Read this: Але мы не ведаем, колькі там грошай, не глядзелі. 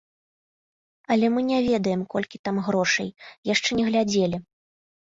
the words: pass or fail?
fail